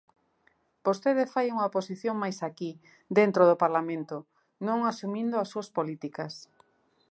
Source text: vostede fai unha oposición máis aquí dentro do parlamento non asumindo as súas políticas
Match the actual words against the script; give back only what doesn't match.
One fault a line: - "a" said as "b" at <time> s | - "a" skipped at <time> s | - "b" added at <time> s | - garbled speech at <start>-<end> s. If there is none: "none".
none